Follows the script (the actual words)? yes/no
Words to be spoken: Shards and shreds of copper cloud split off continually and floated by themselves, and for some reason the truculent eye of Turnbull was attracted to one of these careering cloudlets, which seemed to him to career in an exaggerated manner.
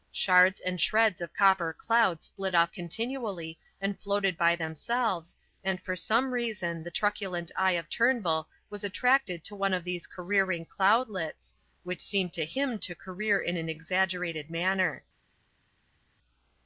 yes